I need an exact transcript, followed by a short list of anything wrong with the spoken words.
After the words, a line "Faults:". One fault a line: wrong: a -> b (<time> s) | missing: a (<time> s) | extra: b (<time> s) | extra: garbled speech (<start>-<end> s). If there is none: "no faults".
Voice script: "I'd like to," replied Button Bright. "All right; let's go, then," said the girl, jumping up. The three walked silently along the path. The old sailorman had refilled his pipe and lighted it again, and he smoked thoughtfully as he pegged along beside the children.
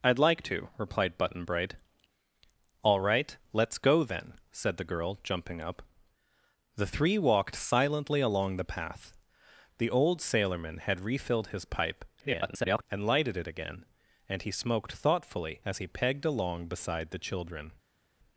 "I'd like to," replied Button Bright. "All right; let's go, then," said the girl, jumping up. The three walked silently along the path. The old sailorman had refilled his pipe [garbled] and lighted it again, and he smoked thoughtfully as he pegged along beside the children.
Faults:
extra: garbled speech (12.2-12.8 s)